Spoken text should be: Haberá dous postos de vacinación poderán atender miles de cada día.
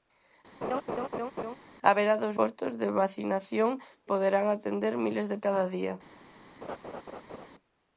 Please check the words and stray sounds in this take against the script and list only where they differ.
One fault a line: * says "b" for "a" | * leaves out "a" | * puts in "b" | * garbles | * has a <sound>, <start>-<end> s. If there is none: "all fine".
* has a laugh, 0.6-1.6 s
* has a laugh, 6.6-7.5 s